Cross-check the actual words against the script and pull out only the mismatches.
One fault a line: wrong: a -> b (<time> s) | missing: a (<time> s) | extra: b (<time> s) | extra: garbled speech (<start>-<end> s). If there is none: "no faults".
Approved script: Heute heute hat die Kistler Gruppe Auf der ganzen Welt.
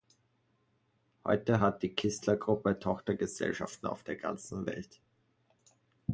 missing: heute (1.6 s)
extra: Tochtergesellschaften (2.8 s)